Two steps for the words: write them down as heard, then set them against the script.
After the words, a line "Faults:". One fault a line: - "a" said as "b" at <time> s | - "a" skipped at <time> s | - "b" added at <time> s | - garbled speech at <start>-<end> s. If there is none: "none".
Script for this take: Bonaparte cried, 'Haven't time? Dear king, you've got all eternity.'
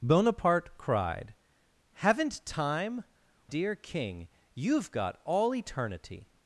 Bonaparte cried, 'Haven't time? Dear king, you've got all eternity.'
Faults:
none